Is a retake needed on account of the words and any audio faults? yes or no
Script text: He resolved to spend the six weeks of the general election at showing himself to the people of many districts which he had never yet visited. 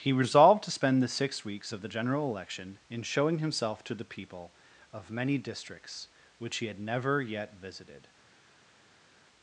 yes